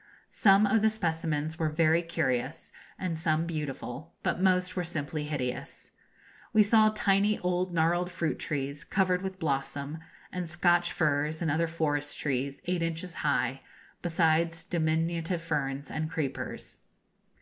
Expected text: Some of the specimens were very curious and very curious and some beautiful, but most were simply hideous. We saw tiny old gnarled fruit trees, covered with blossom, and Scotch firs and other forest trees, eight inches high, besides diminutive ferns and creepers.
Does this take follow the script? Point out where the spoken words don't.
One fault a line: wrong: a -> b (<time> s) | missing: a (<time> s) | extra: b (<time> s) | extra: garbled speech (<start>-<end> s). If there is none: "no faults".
missing: very curious and (3.2 s)